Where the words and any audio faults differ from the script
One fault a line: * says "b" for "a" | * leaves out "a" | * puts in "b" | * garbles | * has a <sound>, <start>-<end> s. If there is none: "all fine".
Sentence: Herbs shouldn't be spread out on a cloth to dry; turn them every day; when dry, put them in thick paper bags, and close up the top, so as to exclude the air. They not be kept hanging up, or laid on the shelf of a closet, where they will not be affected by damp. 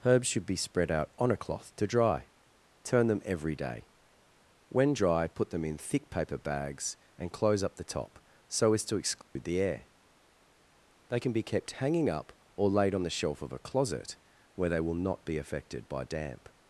* says "should" for "shouldn't"
* has a dropout, 9.2-9.4 s
* says "can" for "not"